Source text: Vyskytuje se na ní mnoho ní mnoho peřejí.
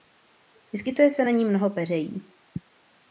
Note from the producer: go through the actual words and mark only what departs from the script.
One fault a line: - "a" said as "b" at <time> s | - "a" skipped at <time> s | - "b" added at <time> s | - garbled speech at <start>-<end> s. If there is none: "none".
- "ní mnoho" skipped at 1.7 s